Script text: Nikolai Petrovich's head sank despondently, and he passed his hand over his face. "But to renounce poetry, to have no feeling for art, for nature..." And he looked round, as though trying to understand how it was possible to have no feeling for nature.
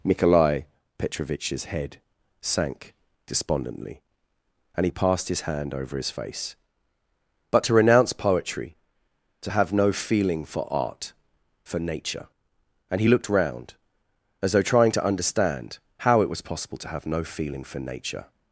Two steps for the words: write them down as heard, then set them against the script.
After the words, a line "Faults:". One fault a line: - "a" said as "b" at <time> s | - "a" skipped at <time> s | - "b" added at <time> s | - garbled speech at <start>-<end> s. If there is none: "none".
Nikolai Petrovich's head sank despondently, and he passed his hand over his face. "But to renounce poetry, to have no feeling for art, for nature..." And he looked round, as though trying to understand how it was possible to have no feeling for nature.
Faults:
none